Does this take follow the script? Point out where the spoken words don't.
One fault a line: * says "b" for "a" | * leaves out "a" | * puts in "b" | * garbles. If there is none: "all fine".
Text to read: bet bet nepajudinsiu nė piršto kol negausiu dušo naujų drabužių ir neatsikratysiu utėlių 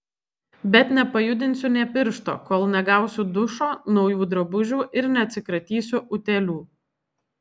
* leaves out "bet"